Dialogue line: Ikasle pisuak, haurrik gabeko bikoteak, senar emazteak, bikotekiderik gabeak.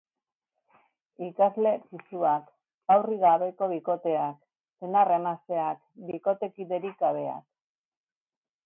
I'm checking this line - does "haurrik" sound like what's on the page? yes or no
yes